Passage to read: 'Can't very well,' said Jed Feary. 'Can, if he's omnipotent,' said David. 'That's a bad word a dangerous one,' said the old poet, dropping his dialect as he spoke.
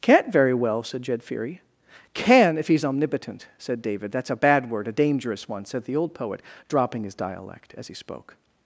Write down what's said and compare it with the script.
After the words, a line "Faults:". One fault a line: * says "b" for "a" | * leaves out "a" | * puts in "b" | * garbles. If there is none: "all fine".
'Can't very well,' said Jed Feary. 'Can, if he's omnipotent,' said David. 'That's a bad word a dangerous one,' said the old poet, dropping his dialect as he spoke.
Faults:
all fine